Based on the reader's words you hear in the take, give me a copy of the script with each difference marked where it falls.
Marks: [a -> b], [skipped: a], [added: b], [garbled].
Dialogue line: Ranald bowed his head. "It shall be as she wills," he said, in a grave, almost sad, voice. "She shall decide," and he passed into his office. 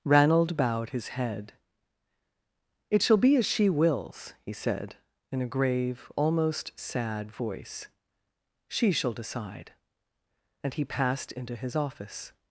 Ranald bowed his head. "It shall be as she wills," he said, in a grave, almost sad, voice. "She shall decide," and he passed into his office.